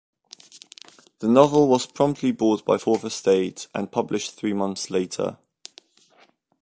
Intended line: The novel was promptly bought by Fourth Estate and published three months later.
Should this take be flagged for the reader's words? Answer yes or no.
no